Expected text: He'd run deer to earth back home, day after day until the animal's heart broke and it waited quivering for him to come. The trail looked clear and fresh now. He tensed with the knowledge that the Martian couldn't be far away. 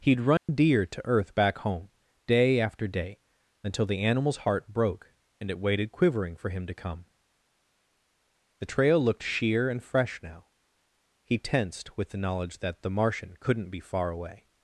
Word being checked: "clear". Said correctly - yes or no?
no